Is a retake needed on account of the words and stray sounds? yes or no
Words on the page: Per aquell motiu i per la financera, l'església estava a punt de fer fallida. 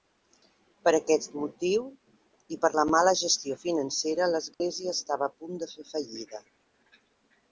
yes